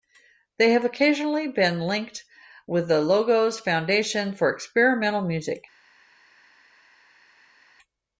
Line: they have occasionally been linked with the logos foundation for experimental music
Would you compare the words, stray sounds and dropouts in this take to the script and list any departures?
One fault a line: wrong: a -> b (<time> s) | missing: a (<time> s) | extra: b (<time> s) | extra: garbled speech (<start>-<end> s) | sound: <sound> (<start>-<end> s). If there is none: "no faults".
no faults